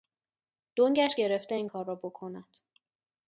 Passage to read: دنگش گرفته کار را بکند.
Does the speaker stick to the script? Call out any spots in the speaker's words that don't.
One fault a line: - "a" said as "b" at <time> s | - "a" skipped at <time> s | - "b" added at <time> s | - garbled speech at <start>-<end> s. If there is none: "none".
- "این" added at 1.5 s